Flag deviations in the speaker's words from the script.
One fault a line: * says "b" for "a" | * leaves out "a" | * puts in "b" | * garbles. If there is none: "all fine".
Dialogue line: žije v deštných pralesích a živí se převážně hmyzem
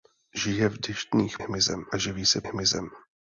* says "hmyzem" for "pralesích"
* leaves out "převážně"